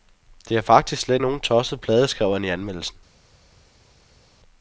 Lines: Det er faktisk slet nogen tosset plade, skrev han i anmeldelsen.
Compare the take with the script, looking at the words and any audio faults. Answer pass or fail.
pass